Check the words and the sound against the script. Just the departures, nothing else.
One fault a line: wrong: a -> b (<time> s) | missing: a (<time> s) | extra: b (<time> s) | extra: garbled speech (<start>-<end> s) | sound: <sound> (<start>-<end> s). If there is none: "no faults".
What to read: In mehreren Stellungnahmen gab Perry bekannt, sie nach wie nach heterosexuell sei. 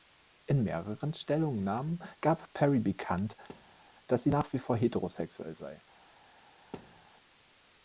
sound: thud (3.5-3.8 s)
extra: dass (4.1 s)
wrong: nach -> vor (4.6 s)
sound: thud (6.7-7.1 s)